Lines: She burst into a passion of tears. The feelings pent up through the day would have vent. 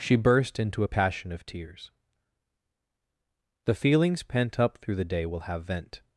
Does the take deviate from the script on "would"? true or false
true